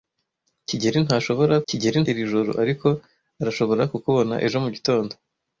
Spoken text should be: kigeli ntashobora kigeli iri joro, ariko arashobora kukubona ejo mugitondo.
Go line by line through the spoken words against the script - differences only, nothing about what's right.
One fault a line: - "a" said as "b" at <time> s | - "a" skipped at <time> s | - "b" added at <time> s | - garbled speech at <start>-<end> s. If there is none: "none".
none